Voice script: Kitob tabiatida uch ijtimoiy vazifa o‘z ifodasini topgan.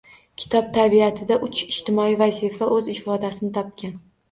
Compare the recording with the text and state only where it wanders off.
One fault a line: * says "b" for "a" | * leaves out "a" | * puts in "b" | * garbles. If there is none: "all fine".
all fine